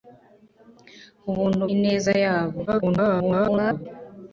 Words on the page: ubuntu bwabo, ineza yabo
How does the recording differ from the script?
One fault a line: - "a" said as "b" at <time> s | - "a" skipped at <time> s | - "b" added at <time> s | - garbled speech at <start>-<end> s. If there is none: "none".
- "bwabo" skipped at 1.6 s
- garbled speech at 2.7-3.9 s